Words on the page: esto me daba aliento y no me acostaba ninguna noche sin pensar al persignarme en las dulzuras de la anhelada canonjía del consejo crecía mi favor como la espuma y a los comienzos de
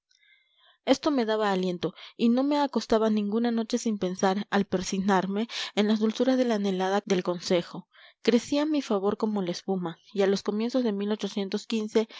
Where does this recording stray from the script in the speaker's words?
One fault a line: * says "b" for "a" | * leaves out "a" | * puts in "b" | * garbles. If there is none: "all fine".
* leaves out "canonjía"